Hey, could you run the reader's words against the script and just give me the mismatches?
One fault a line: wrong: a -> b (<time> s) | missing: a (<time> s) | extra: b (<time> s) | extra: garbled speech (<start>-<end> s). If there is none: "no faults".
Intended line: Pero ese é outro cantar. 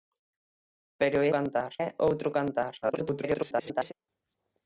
wrong: ese -> cantar (1.3 s)
extra: garbled speech (2.8-3.9 s)